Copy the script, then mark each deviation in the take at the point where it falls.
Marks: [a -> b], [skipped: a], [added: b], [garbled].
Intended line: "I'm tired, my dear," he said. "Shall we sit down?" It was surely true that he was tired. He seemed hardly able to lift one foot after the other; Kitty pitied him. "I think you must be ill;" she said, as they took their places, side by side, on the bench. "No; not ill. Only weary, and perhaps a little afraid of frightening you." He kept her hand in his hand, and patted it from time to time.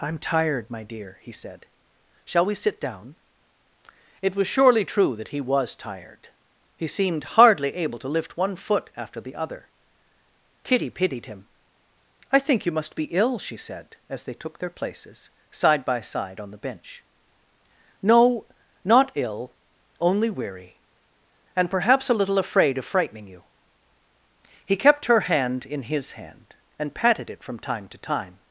"I'm tired, my dear," he said. "Shall we sit down?" It was surely true that he was tired. He seemed hardly able to lift one foot after the other; Kitty pitied him. "I think you must be ill;" she said, as they took their places, side by side, on the bench. "No; not ill. Only weary, and perhaps a little afraid of frightening you." He kept her hand in his hand, and patted it from time to time.